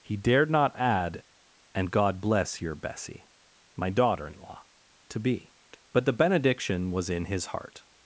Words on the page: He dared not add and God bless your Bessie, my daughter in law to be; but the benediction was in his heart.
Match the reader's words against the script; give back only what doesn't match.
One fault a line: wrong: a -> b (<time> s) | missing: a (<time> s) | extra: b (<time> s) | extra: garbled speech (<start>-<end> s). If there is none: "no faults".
no faults